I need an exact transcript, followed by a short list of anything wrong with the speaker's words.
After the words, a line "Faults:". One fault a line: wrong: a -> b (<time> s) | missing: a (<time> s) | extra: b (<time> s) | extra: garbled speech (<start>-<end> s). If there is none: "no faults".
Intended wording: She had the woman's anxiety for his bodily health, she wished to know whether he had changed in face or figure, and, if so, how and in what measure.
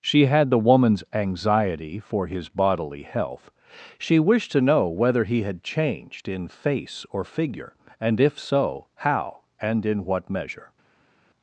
She had the woman's anxiety for his bodily health, she wished to know whether he had changed in face or figure, and, if so, how and in what measure.
Faults:
no faults